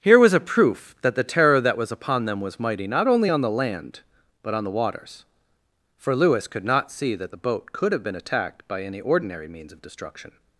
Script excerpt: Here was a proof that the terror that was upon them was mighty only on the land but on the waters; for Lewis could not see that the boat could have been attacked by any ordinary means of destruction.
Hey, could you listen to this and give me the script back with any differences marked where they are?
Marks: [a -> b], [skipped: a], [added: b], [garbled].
Here was a proof that the terror that was upon them was mighty [added: not] only on the land but on the waters; for Lewis could not see that the boat could have been attacked by any ordinary means of destruction.